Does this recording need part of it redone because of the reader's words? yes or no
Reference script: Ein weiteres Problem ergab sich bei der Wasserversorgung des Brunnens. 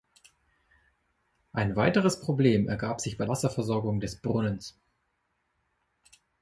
yes